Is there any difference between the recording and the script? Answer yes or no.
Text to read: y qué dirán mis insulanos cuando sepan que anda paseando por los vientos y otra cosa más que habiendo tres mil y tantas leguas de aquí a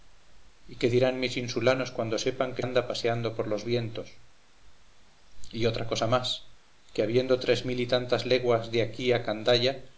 no